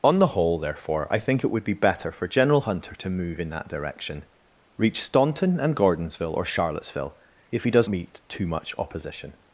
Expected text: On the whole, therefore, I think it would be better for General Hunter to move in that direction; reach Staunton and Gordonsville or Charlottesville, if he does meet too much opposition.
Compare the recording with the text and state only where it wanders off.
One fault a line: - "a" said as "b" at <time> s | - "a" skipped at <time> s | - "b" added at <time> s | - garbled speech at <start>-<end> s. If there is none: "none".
none